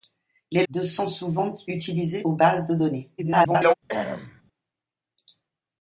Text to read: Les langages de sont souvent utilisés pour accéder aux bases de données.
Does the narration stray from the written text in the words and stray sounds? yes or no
yes